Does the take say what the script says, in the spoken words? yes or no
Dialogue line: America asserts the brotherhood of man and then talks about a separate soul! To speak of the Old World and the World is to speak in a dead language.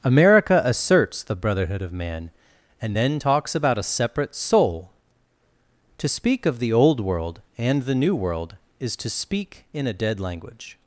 no